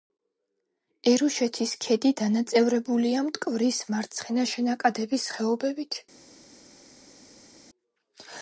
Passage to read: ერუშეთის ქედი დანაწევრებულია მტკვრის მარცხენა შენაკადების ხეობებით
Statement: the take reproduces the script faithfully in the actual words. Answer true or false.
true